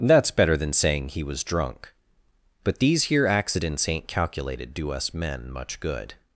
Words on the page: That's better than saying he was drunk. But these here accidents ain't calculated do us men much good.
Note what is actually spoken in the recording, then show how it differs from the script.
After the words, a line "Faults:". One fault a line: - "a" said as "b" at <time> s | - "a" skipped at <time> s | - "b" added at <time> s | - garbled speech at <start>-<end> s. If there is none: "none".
That's better than saying he was drunk. But these here accidents ain't calculated do us men much good.
Faults:
none